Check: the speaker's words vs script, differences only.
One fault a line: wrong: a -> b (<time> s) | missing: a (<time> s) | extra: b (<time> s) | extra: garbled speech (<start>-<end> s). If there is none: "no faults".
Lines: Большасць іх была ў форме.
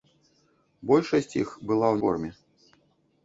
no faults